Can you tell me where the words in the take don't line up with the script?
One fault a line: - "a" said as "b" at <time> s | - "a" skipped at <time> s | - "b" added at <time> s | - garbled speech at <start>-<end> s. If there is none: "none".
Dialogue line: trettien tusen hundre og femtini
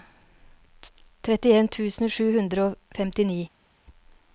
- "sju" added at 2.1 s